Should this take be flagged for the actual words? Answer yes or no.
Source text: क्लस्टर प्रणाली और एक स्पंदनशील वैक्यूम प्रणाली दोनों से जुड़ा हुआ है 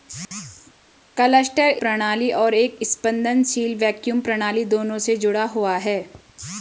no